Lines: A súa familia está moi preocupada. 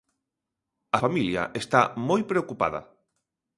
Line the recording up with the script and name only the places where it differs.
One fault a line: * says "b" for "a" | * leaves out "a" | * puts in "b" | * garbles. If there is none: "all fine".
* leaves out "súa"